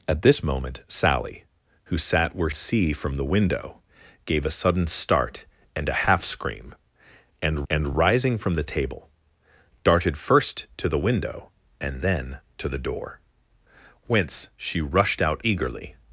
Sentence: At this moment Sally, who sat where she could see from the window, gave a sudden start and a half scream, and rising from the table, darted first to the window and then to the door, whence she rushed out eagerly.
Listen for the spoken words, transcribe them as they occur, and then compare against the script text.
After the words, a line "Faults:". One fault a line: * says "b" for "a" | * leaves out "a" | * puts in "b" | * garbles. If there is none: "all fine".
At this moment Sally, who sat where see from the window, gave a sudden start and a half scream, and and rising from the table, darted first to the window and then to the door, whence she rushed out eagerly.
Faults:
* leaves out "she could"
* puts in "and"